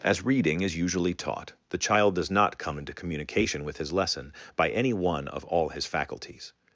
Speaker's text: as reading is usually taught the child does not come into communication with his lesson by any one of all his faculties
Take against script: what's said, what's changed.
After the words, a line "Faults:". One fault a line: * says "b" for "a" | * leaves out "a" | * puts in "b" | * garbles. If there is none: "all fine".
as reading is usually taught the child does not come into communication with his lesson by any one of all his faculties
Faults:
all fine